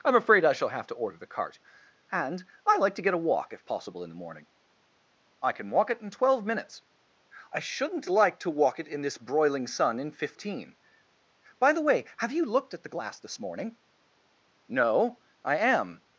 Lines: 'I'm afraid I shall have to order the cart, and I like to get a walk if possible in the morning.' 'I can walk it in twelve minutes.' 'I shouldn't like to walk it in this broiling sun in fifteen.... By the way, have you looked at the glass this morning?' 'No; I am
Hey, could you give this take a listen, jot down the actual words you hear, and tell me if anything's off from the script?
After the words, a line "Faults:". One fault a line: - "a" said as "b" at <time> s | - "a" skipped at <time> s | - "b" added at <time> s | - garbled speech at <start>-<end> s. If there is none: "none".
'I'm afraid I shall have to order the cart, and I like to get a walk if possible in the morning.' 'I can walk it in twelve minutes.' 'I shouldn't like to walk it in this broiling sun in fifteen.... By the way, have you looked at the glass this morning?' 'No; I am
Faults:
none